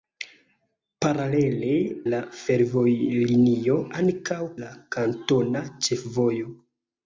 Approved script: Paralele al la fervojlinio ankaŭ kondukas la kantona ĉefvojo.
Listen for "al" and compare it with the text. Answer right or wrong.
wrong